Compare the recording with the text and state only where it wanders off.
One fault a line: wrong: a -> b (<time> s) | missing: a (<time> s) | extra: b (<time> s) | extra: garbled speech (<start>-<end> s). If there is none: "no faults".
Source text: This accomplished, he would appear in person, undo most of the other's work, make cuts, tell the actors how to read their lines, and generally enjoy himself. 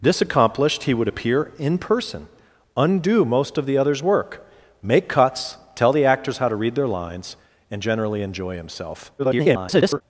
extra: garbled speech (9.2-10.0 s)